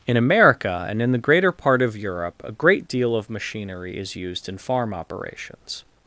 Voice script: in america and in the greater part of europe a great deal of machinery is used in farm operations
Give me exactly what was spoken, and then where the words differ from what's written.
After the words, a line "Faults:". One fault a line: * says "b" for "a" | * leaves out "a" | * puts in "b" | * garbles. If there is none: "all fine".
in america and in the greater part of europe a great deal of machinery is used in farm operations
Faults:
all fine